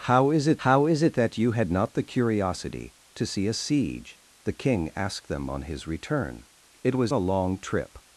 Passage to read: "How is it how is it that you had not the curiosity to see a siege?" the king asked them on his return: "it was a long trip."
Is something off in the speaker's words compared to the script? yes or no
no